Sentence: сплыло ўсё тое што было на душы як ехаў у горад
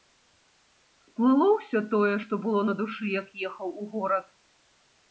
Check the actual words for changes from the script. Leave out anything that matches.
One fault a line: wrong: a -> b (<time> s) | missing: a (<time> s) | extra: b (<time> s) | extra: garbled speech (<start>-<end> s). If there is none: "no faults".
no faults